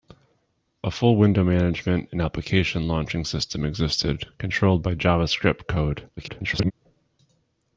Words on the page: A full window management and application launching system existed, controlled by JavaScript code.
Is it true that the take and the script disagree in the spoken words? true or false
true